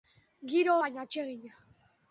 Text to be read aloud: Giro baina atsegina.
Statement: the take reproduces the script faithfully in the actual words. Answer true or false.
true